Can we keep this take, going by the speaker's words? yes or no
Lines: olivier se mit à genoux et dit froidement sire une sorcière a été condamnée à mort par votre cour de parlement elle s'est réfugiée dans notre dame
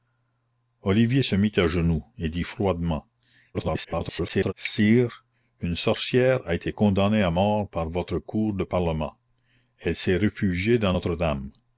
no